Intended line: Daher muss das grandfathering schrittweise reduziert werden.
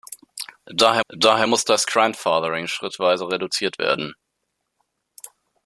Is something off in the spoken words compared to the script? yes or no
yes